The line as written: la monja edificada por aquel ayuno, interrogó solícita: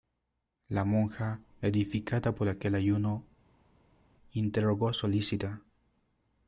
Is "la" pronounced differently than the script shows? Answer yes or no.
no